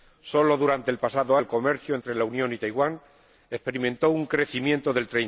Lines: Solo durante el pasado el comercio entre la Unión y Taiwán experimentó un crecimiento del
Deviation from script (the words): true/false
false